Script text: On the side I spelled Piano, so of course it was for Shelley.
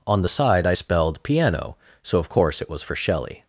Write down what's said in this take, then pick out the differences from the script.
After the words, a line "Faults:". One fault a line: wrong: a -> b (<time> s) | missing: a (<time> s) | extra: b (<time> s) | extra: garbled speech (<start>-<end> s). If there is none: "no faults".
On the side I spelled Piano, so of course it was for Shelley.
Faults:
no faults